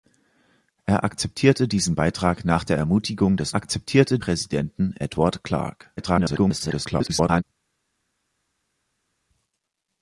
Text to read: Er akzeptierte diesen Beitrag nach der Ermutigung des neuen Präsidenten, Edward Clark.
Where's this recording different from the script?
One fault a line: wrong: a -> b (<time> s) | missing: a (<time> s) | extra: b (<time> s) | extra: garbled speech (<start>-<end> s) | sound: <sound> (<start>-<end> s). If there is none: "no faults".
wrong: neuen -> akzeptierte (3.5 s)
extra: garbled speech (6.0-7.4 s)